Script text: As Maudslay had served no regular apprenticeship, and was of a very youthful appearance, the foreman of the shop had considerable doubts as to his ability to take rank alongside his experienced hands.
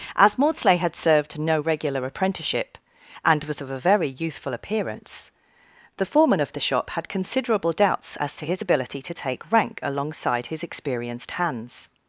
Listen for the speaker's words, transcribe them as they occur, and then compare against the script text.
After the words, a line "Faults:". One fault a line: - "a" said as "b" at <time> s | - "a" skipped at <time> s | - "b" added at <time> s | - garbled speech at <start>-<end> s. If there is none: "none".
As Maudslay had served no regular apprenticeship, and was of a very youthful appearance, the foreman of the shop had considerable doubts as to his ability to take rank alongside his experienced hands.
Faults:
none